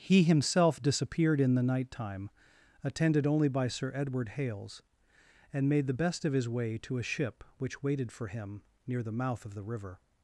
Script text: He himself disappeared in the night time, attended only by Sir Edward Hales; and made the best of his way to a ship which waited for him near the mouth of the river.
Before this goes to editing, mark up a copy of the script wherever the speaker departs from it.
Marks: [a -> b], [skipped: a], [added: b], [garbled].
He himself disappeared in the night time, attended only by Sir Edward Hales; and made the best of his way to a ship which waited for him near the mouth of the river.